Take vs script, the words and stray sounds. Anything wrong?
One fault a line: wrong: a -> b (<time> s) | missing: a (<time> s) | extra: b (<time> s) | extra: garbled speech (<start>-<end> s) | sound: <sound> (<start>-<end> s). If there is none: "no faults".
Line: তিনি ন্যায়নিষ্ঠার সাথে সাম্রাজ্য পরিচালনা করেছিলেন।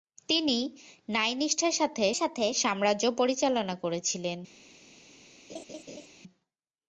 extra: সাথে (2.1 s)
sound: laugh (5.5-6.1 s)